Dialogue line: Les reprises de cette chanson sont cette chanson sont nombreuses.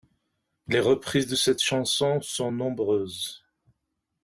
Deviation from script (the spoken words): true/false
true